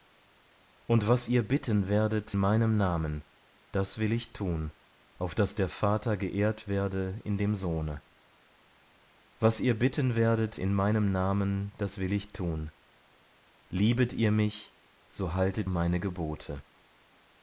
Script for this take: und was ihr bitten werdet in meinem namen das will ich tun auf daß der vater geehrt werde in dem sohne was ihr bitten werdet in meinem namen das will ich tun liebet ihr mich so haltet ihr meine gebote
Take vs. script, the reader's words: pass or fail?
fail